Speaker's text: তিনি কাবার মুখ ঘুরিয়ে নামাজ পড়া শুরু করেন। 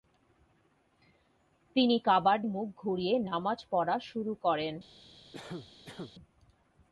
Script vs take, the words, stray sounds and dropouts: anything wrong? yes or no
yes